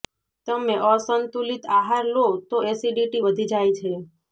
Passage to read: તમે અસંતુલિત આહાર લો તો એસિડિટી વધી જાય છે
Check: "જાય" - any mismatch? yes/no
no